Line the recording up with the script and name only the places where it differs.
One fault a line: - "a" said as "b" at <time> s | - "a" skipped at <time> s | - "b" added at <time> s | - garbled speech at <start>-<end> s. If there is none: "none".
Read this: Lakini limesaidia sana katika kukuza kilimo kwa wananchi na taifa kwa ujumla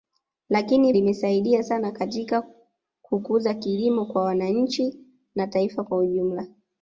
none